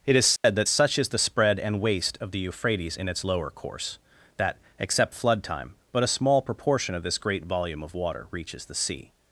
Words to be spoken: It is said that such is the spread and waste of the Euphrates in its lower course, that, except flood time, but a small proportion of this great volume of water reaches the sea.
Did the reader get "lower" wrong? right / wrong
right